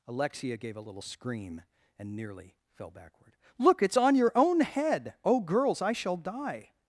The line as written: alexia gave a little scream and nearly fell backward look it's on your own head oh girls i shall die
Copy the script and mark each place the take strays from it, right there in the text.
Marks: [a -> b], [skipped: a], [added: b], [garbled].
alexia gave a little scream and nearly fell backward look it's on your own head oh girls i shall die